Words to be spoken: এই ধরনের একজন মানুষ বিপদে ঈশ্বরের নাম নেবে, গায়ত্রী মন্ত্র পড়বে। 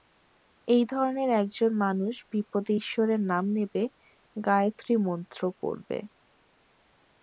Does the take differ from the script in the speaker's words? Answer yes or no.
no